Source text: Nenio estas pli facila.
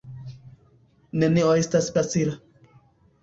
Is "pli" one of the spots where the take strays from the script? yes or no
yes